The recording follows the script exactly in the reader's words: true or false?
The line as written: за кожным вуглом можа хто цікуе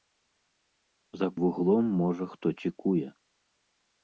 false